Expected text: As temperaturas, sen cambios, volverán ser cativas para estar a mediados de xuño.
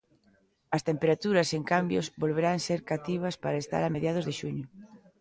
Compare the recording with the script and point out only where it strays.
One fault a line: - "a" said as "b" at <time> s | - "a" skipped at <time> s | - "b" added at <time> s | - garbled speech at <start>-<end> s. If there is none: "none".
none